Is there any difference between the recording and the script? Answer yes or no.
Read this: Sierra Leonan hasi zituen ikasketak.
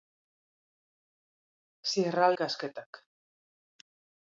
yes